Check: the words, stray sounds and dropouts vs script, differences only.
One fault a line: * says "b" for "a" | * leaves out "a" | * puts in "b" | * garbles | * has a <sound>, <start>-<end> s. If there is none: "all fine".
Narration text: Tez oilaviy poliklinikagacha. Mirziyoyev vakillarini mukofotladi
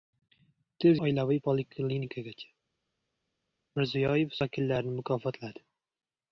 all fine